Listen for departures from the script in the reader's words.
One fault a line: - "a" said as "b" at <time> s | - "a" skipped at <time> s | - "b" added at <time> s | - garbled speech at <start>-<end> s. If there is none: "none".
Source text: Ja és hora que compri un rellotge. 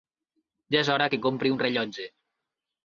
none